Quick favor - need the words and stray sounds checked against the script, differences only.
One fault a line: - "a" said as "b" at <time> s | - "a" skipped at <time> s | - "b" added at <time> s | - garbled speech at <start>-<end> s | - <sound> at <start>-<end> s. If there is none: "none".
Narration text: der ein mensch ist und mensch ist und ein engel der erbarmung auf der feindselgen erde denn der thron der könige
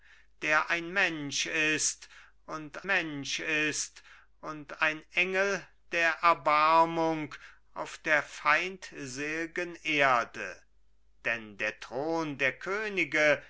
none